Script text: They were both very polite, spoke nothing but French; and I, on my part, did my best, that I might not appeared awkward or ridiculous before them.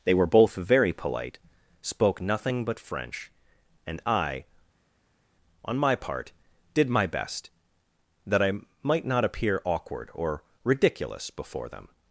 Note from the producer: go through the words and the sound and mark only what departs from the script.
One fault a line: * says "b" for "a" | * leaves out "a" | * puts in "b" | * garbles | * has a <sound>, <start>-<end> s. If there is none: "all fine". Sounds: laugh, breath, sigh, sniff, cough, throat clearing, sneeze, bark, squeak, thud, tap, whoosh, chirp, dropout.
* says "appear" for "appeared"